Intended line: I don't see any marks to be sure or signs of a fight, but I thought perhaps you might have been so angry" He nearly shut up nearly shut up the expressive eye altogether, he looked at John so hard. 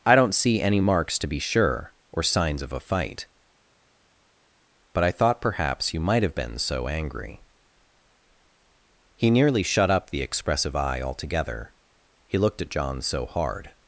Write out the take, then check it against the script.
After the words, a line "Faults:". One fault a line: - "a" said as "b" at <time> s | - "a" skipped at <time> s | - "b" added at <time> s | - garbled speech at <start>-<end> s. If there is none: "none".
I don't see any marks to be sure or signs of a fight, but I thought perhaps you might have been so angry" He nearly shut up the expressive eye altogether, he looked at John so hard.
Faults:
- "nearly shut up" skipped at 10.1 s